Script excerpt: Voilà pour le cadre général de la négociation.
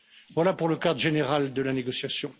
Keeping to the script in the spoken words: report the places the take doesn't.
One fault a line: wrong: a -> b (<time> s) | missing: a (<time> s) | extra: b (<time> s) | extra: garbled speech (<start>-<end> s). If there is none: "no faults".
no faults